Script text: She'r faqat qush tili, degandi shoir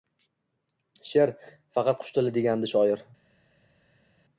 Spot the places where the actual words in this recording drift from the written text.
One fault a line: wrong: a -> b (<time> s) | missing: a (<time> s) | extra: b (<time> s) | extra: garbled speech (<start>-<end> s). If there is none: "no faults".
no faults